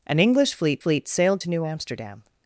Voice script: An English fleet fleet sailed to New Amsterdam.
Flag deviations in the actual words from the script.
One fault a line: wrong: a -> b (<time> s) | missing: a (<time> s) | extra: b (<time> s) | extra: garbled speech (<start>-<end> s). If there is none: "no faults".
no faults